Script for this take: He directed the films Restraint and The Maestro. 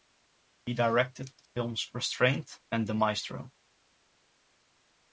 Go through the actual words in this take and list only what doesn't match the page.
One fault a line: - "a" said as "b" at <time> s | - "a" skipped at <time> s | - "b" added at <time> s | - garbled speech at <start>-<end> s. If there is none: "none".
none